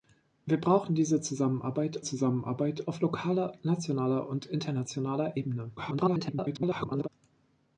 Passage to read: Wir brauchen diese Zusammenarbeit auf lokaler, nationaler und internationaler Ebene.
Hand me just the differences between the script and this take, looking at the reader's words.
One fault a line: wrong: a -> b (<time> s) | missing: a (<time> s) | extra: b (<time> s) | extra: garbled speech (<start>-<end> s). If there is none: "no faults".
extra: Zusammenarbeit (2.0 s)
extra: garbled speech (5.8-7.1 s)